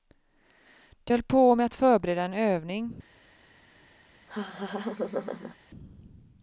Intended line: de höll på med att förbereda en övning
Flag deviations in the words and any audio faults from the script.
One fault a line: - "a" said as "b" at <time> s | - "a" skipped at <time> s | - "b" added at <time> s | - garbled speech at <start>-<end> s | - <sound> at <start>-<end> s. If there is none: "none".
- laugh at 4.3-5.6 s